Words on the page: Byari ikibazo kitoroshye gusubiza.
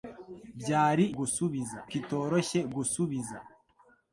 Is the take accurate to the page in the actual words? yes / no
no